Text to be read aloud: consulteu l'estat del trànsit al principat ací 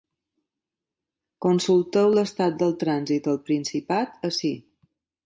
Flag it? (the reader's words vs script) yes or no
no